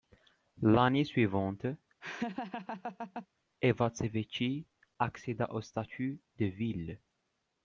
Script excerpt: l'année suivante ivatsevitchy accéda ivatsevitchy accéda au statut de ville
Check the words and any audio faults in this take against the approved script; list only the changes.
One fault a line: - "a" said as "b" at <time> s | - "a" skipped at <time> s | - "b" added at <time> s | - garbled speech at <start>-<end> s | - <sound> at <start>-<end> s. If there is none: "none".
- laugh at 2.0-3.3 s
- "ivatsevitchy accéda" skipped at 5.5 s